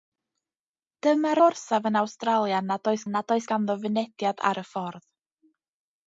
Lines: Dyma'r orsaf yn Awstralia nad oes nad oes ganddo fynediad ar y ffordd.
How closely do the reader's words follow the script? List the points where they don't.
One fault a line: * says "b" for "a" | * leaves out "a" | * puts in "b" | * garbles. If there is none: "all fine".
all fine